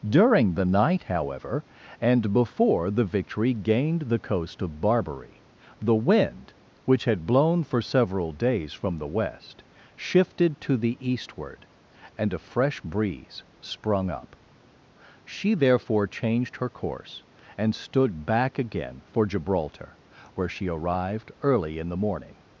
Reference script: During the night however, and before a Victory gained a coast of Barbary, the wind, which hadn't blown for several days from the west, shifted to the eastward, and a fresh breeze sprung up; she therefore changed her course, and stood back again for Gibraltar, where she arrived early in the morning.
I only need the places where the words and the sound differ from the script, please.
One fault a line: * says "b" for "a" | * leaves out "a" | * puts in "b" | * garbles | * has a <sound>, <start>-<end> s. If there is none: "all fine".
* says "the" for "a"
* says "the" for "a"
* says "had" for "hadn't"